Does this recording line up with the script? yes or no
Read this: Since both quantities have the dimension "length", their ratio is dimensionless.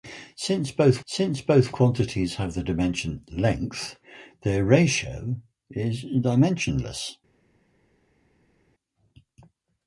no